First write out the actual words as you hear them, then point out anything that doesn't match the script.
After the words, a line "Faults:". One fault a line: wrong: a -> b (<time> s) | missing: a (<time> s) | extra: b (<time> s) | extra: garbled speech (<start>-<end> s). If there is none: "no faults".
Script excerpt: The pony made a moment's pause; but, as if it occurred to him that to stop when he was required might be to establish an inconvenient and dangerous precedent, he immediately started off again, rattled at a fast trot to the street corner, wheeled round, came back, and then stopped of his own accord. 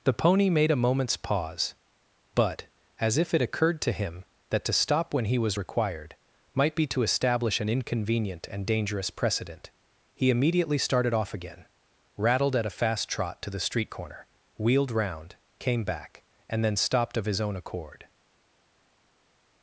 The pony made a moment's pause; but, as if it occurred to him that to stop when he was required might be to establish an inconvenient and dangerous precedent, he immediately started off again, rattled at a fast trot to the street corner, wheeled round, came back, and then stopped of his own accord.
Faults:
no faults